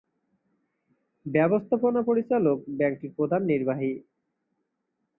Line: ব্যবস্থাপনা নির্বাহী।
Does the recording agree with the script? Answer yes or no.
no